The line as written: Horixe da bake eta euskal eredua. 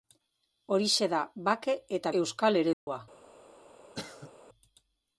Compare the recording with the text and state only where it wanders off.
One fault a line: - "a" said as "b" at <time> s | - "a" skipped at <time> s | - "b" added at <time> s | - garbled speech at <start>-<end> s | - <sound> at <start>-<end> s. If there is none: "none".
- dropout at 2.7-2.9 s
- cough at 3.9-4.3 s